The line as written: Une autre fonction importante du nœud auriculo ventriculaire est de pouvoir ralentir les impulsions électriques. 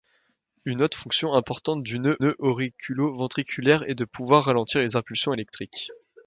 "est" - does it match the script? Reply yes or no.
yes